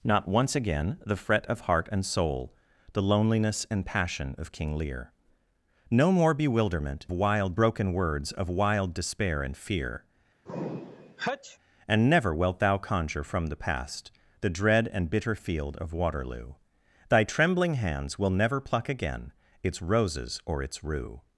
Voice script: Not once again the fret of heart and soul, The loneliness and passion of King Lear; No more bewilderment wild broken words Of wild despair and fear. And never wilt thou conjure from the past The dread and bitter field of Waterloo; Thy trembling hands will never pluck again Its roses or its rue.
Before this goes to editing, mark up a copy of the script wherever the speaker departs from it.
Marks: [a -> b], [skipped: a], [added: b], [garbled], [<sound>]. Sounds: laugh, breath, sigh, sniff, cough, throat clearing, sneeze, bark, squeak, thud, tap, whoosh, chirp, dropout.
Not once again the fret of heart and soul, The loneliness and passion of King Lear; No more bewilderment wild broken words Of wild despair and fear. [sneeze] And never wilt thou conjure from the past The dread and bitter field of Waterloo; Thy trembling hands will never pluck again Its roses or its rue.